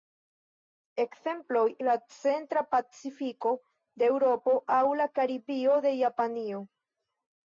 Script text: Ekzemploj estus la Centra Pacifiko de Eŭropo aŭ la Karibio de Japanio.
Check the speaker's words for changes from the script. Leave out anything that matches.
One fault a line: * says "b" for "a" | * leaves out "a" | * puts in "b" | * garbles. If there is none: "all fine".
* leaves out "estus"